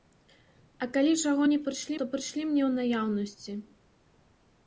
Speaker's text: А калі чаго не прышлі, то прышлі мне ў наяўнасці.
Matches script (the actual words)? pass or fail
pass